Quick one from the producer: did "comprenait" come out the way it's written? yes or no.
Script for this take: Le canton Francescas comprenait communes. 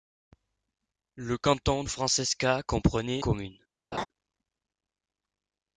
yes